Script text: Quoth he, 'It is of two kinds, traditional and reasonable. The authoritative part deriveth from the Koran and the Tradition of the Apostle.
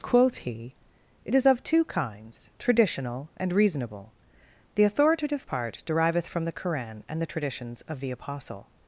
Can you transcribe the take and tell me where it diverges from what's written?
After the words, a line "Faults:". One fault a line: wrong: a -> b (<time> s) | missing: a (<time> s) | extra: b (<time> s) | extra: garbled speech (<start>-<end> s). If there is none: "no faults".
Quoth he, 'It is of two kinds, traditional and reasonable. The authoritative part deriveth from the Koran and the Traditions of the Apostle.
Faults:
wrong: Tradition -> Traditions (7.3 s)